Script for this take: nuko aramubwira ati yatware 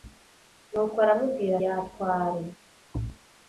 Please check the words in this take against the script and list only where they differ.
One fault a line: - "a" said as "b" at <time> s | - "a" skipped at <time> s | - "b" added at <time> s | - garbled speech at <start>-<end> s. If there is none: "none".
- "ati" skipped at 1.5 s